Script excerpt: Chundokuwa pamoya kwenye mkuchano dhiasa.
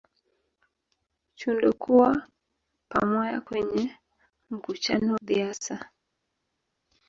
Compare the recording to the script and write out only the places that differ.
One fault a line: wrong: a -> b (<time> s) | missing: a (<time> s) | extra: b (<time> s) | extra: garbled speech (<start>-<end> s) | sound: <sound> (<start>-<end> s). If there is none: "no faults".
no faults